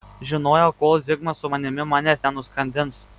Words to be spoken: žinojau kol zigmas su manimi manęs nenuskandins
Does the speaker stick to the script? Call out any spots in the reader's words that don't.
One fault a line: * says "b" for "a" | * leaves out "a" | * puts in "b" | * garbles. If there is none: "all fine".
all fine